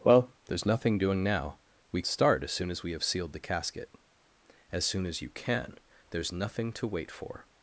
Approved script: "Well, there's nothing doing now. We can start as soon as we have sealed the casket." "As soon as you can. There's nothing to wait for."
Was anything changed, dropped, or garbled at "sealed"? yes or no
no